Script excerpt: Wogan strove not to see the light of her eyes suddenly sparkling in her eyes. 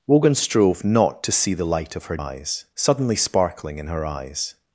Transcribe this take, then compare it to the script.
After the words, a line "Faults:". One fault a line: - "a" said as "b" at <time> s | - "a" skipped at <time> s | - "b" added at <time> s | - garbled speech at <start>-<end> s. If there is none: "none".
Wogan strove not to see the light of her eyes suddenly sparkling in her eyes.
Faults:
none